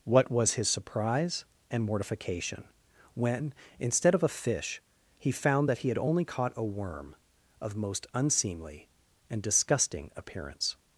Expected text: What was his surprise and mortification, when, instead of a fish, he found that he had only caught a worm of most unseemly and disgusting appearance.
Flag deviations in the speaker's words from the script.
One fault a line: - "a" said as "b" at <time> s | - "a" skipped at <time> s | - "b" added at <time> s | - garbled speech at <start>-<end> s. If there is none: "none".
none